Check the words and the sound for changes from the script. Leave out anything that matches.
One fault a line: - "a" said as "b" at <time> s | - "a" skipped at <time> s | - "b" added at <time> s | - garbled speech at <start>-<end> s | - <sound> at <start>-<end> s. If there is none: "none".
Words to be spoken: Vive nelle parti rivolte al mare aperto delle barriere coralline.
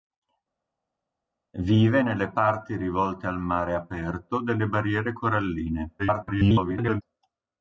- garbled speech at 6.0-7.0 s